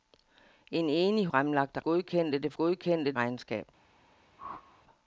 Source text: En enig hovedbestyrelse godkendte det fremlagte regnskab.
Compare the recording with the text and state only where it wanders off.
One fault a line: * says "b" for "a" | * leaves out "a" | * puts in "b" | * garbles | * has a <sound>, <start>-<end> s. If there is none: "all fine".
* says "fremlagte" for "hovedbestyrelse"
* says "godkendte" for "fremlagte"
* has a whoosh, 4.4-4.8 s